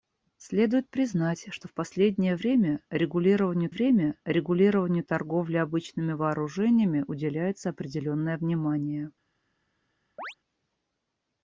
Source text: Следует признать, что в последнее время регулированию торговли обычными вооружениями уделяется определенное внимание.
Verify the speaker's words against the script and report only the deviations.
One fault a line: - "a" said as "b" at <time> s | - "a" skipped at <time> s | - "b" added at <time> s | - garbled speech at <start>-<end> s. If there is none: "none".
- "время регулированию" added at 3.7 s